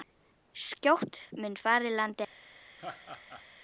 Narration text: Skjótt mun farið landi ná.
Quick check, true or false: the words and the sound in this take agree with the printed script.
false